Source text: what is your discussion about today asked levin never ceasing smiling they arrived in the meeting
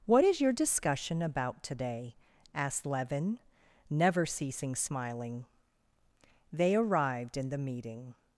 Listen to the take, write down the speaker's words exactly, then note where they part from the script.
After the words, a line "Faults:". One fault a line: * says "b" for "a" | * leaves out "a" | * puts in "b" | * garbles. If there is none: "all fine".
what is your discussion about today asked levin never ceasing smiling they arrived in the meeting
Faults:
all fine